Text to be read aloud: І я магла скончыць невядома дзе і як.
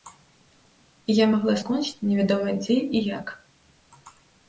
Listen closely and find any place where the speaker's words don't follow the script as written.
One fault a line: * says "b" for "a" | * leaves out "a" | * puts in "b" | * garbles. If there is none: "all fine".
all fine